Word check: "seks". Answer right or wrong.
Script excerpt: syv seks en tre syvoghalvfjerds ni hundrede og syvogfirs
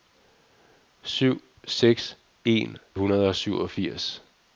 right